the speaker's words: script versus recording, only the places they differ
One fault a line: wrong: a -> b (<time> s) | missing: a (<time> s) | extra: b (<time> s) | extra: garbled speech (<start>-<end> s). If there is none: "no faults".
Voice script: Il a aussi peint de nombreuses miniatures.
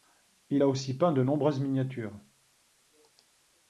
no faults